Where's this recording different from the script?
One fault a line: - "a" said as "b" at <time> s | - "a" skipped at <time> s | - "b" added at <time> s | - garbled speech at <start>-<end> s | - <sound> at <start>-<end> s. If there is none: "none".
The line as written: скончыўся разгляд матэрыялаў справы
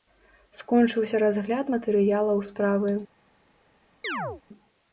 - chirp at 4.0-4.4 s